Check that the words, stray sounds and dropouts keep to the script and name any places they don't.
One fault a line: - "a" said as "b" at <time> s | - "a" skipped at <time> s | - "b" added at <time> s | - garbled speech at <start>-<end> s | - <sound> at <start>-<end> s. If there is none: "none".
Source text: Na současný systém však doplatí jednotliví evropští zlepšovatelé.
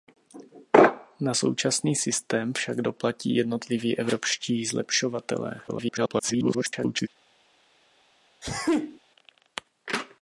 - garbled speech at 5.7-7.1 s
- sneeze at 8.4-9.0 s